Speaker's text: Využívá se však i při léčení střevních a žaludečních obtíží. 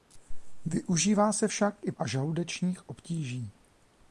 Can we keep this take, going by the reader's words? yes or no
no